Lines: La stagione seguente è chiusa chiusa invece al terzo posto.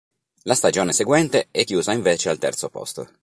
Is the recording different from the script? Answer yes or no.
yes